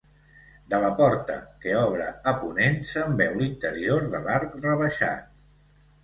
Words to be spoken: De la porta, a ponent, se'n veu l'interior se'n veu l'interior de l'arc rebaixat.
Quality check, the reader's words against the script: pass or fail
fail